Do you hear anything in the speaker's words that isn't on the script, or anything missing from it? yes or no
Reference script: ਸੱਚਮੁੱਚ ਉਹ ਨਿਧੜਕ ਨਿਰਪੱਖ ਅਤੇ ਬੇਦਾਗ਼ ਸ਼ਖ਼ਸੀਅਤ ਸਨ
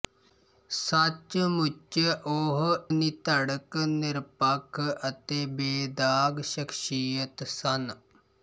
no